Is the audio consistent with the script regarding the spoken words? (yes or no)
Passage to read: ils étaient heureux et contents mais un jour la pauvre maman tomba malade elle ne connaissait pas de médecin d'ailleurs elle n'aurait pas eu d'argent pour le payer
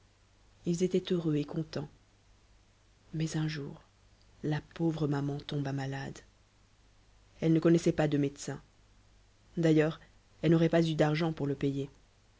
yes